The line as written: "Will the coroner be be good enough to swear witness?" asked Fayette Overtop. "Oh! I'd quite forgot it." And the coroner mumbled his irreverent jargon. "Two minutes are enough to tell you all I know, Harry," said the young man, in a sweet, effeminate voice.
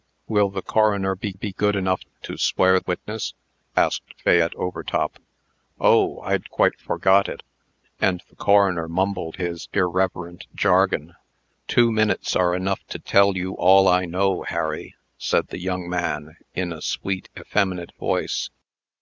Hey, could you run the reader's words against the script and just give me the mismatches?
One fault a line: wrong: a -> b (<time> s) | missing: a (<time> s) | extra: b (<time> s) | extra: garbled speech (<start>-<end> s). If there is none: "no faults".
no faults